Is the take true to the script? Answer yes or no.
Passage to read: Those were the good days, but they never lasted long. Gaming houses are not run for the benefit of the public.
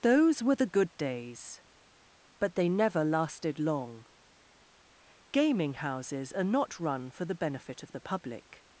yes